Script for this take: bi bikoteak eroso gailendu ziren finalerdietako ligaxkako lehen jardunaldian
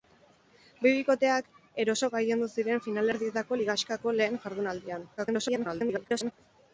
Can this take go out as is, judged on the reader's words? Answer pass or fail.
fail